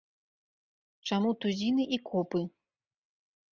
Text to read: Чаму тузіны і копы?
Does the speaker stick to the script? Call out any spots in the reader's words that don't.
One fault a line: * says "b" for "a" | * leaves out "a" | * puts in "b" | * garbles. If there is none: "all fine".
all fine